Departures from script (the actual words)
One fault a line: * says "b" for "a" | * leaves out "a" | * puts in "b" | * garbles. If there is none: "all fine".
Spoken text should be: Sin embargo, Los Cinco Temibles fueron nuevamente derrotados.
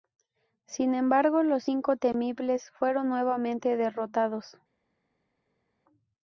all fine